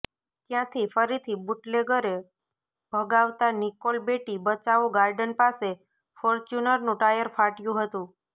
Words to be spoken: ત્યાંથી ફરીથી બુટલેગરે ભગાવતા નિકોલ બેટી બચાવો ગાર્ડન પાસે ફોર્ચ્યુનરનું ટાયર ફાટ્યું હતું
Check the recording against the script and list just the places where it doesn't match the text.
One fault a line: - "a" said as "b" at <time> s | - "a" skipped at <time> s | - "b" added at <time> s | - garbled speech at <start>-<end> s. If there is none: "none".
none